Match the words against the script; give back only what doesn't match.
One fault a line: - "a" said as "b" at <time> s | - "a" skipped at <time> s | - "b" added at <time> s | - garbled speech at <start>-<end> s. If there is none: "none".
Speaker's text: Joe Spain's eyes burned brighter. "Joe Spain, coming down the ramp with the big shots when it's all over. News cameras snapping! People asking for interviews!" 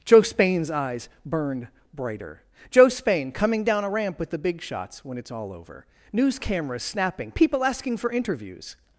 - "the" said as "a" at 3.8 s